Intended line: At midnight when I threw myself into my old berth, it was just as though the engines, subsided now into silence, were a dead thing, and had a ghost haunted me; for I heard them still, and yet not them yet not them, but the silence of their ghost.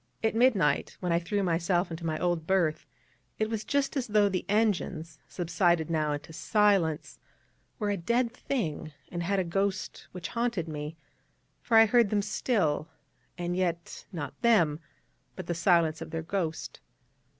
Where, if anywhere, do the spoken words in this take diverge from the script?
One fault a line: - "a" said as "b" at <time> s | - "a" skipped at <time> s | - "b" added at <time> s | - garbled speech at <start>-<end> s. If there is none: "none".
- "which" added at 10.1 s
- "yet not them" skipped at 14.8 s